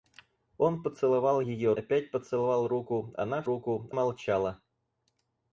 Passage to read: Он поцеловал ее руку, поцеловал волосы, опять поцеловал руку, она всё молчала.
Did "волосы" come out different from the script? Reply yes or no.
yes